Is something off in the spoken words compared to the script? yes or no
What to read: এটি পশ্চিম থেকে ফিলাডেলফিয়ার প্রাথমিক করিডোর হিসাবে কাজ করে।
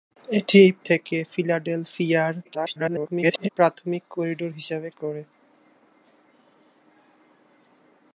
yes